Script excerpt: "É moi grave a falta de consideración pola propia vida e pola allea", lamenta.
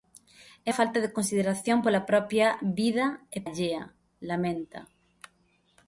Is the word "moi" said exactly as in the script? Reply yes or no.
no